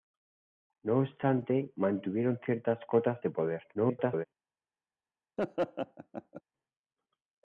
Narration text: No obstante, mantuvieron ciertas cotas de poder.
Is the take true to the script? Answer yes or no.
no